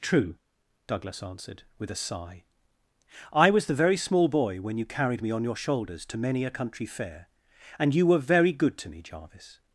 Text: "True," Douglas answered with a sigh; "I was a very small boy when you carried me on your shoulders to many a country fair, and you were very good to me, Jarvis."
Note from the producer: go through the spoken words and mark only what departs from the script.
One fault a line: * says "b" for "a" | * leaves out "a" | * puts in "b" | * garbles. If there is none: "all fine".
* says "the" for "a"